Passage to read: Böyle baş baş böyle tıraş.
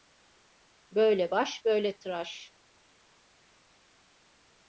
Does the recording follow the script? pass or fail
fail